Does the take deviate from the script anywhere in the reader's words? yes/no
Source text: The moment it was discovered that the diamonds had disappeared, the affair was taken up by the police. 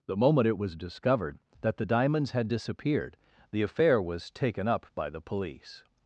no